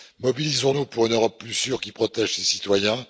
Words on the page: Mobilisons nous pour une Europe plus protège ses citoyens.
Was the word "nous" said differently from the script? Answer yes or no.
no